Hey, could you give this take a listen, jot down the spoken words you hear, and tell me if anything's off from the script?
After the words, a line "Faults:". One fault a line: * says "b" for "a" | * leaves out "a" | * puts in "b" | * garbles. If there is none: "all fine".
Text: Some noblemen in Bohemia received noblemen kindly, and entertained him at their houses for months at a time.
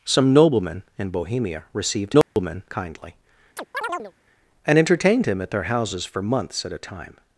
Some noblemen in Bohemia received noblemen kindly, and entertained him at their houses for months at a time.
Faults:
all fine